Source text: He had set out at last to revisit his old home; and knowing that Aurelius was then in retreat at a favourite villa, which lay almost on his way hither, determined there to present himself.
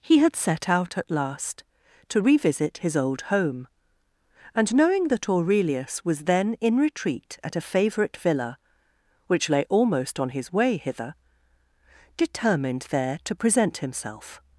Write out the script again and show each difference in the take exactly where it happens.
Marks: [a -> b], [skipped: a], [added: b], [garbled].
He had set out at last to revisit his old home; and knowing that Aurelius was then in retreat at a favourite villa, which lay almost on his way hither, determined there to present himself.